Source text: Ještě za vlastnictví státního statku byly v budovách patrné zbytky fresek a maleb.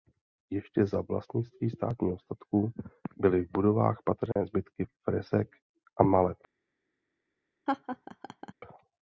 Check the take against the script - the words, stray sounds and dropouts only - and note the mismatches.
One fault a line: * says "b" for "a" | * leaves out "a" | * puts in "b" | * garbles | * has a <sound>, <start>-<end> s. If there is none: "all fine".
* has a dropout, 4.3-4.4 s
* has a laugh, 7.7-8.5 s